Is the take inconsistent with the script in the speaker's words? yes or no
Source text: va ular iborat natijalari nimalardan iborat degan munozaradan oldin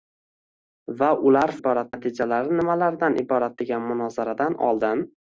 no